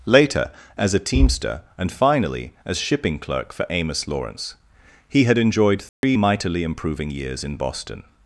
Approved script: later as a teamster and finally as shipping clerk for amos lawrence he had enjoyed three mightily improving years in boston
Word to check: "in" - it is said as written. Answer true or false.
true